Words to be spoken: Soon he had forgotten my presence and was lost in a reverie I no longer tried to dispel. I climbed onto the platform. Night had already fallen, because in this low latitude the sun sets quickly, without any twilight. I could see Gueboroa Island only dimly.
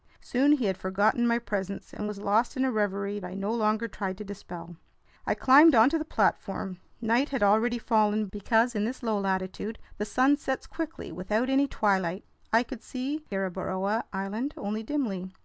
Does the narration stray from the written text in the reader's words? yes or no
no